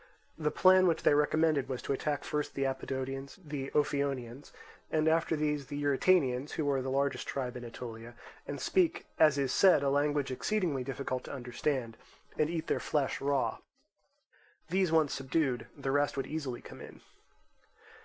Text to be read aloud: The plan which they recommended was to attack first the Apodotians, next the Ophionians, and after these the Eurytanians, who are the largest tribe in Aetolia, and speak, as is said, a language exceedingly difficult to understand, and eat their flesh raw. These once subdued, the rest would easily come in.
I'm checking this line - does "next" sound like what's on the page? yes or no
no